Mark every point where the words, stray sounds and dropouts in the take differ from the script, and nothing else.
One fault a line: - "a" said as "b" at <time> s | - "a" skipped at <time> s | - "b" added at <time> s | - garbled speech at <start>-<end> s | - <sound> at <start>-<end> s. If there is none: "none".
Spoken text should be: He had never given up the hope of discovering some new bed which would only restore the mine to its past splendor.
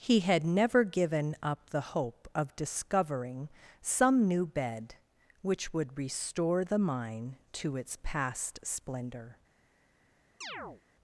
- "only" skipped at 6.0 s
- chirp at 10.4-10.8 s